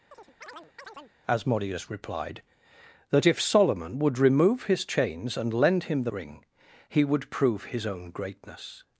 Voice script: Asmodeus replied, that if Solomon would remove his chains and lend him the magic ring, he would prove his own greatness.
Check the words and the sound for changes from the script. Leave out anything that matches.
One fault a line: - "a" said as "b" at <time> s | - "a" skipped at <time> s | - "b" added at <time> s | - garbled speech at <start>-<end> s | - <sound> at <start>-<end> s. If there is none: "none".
- chirp at 0.1-1.2 s
- "magic" skipped at 6.1 s